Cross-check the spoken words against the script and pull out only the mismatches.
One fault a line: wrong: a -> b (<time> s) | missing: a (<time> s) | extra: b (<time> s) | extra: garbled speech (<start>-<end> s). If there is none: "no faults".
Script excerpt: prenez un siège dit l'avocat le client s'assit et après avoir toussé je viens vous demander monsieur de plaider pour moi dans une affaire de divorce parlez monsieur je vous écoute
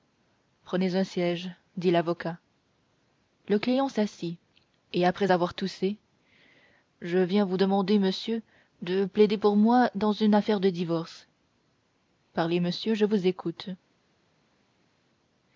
no faults